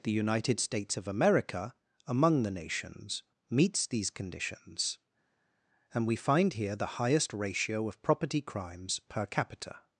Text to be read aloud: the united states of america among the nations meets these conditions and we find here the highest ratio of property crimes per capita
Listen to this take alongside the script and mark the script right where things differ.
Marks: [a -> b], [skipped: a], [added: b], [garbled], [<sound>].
the united states of america among the nations meets these conditions and we find here the highest ratio of property crimes per capita